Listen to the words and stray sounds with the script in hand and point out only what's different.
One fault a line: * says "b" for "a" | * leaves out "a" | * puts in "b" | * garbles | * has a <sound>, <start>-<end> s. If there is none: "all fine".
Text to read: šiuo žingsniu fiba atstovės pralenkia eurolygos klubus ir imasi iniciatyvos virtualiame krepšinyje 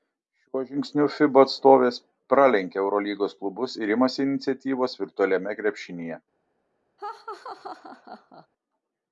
* has a laugh, 7.0-8.5 s